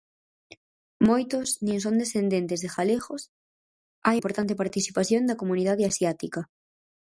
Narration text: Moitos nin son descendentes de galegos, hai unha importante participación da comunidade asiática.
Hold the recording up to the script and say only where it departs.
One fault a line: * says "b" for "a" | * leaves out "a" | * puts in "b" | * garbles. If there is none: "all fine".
* leaves out "unha"